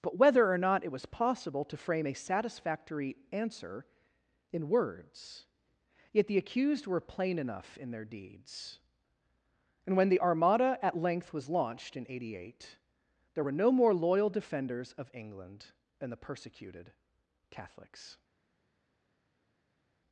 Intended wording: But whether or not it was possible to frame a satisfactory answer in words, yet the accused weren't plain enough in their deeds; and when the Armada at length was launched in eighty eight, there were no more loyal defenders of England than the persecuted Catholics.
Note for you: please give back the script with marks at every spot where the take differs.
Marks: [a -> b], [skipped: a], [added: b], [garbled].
But whether or not it was possible to frame a satisfactory answer in words, yet the accused [weren't -> were] plain enough in their deeds; and when the Armada at length was launched in eighty eight, there were no more loyal defenders of England than the persecuted Catholics.